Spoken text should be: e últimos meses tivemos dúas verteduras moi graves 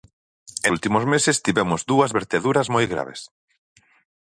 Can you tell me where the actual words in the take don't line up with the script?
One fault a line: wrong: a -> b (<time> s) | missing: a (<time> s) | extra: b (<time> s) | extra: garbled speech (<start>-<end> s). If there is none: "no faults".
no faults